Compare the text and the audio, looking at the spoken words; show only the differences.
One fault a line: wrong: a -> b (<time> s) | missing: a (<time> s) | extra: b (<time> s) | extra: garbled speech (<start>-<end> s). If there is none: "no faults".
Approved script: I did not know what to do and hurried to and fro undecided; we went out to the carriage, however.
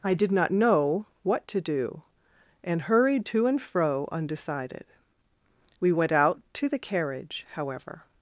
no faults